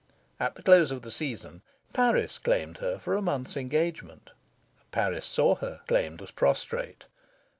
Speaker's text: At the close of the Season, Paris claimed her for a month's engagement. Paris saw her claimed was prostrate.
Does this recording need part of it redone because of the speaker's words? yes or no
no